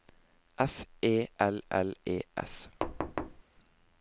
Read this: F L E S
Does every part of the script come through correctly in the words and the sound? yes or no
no